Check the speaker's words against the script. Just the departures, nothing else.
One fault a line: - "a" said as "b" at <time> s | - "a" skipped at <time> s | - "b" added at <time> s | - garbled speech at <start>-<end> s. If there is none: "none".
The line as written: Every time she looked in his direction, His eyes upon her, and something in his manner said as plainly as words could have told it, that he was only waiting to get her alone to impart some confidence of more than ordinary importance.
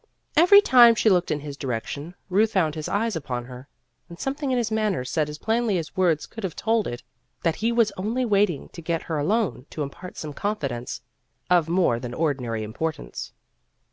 - "Ruth found" added at 2.3 s